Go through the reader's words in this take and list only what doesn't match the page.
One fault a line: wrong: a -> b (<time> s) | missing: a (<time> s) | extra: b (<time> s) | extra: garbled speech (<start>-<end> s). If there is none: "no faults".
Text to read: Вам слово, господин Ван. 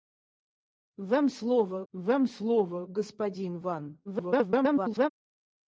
extra: вам слово (1.9 s)
extra: garbled speech (4.0-5.1 s)